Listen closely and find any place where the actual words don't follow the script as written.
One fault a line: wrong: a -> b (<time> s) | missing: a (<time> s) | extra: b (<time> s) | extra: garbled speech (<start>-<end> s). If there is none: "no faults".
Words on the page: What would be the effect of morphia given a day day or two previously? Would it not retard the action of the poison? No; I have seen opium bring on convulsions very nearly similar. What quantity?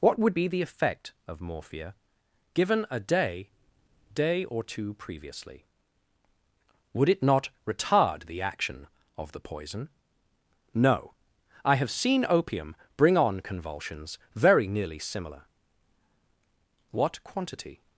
no faults